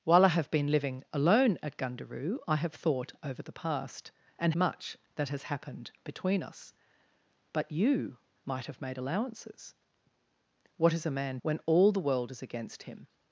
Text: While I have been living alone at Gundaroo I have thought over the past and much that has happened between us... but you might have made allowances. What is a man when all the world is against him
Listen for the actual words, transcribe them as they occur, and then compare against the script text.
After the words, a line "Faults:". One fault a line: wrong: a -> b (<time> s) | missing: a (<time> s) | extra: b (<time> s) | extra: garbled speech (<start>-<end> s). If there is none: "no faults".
While I have been living alone at Gundaroo I have thought over the past and much that has happened between us... but you might have made allowances. What is a man when all the world is against him
Faults:
no faults